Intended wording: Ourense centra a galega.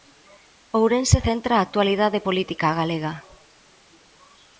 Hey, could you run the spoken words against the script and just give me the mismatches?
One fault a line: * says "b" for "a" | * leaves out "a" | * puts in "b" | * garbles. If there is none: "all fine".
* puts in "actualidade política"